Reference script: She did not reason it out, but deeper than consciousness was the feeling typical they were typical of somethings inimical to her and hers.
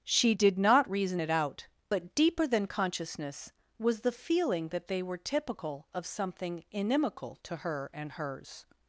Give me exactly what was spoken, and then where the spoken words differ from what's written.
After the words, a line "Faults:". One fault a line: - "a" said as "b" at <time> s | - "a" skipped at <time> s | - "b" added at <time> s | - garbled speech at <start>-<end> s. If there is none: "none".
She did not reason it out, but deeper than consciousness was the feeling that they were typical of something inimical to her and hers.
Faults:
- "typical" said as "that" at 4.7 s
- "somethings" said as "something" at 6.1 s